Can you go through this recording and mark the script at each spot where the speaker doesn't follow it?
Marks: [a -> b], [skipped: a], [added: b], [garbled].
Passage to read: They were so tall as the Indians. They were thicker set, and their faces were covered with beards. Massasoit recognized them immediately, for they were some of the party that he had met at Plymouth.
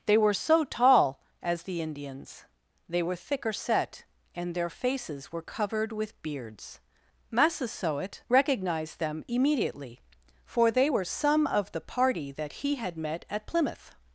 They were so tall as the Indians. They were thicker set, and their faces were covered with beards. Massasoit recognized them immediately, for they were some of the party that he had met at Plymouth.